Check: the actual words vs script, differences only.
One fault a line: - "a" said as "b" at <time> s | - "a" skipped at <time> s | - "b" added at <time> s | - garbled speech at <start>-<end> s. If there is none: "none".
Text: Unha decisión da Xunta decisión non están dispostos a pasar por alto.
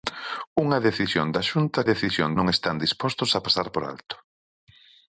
none